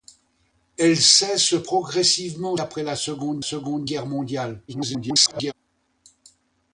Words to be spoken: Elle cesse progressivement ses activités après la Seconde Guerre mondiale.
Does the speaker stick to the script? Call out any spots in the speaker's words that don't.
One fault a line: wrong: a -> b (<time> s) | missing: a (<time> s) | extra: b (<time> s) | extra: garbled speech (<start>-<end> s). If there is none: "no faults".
missing: ses activités (2.6 s)
extra: Seconde (3.4 s)
extra: garbled speech (4.7-5.5 s)